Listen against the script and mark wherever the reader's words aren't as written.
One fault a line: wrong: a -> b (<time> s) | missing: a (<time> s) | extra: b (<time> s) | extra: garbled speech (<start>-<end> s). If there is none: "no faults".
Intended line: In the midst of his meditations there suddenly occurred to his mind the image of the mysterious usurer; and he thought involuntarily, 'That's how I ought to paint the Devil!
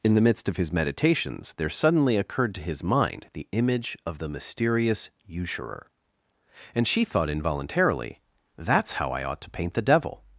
wrong: he -> she (6.9 s)